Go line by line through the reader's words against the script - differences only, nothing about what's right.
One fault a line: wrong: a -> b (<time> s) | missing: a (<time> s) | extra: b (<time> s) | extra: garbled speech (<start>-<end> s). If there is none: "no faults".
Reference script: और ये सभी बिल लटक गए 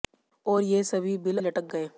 no faults